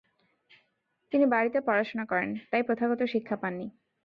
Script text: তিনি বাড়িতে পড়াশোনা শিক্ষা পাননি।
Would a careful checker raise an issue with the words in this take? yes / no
yes